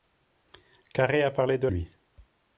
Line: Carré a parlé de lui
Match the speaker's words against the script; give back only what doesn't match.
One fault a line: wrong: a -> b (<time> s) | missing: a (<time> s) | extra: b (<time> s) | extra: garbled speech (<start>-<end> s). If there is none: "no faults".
no faults